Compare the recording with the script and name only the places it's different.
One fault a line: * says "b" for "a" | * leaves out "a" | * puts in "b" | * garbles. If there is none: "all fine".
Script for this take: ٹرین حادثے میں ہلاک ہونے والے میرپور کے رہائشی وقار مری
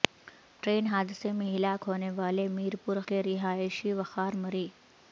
all fine